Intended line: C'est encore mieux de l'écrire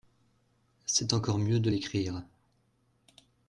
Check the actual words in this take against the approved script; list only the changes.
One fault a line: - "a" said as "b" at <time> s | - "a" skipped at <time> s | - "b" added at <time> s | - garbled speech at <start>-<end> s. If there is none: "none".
none